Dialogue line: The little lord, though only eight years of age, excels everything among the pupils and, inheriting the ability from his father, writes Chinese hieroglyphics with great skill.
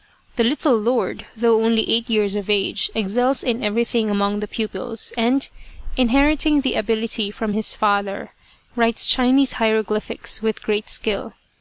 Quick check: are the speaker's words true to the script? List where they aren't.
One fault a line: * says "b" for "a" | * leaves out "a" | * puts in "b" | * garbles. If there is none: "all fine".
* puts in "in"